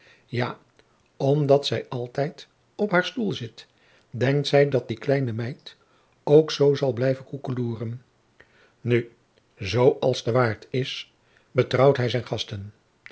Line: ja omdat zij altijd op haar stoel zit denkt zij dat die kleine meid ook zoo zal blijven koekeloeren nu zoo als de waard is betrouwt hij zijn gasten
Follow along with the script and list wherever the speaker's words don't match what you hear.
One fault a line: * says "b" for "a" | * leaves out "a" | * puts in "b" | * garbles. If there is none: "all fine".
all fine